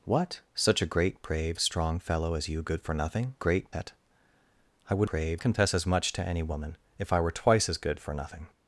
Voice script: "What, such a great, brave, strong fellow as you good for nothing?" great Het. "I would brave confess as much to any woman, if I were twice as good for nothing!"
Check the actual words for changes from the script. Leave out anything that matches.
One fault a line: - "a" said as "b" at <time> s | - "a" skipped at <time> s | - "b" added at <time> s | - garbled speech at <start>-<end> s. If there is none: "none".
none